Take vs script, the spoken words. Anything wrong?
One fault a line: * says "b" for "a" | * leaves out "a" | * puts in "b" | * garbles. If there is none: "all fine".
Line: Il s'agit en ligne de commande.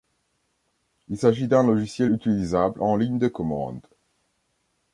* puts in "d'un logiciel utilisable"